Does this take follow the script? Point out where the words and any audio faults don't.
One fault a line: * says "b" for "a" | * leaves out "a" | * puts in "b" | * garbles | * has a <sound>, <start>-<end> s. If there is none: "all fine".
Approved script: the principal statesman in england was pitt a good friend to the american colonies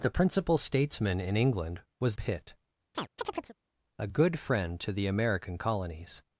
* has a chirp, 2.9-3.6 s